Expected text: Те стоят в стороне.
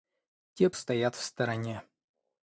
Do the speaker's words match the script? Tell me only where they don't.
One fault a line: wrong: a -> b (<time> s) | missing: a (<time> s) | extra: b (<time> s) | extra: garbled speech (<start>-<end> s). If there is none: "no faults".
no faults